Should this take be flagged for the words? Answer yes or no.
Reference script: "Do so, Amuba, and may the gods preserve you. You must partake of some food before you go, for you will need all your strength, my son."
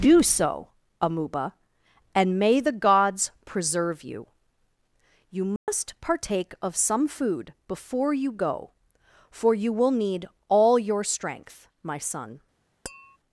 no